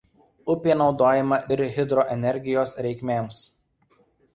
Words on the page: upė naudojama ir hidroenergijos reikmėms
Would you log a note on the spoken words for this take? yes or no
no